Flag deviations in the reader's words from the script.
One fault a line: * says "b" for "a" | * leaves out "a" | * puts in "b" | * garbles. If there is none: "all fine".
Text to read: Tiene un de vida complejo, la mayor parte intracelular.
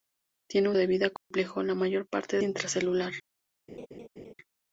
all fine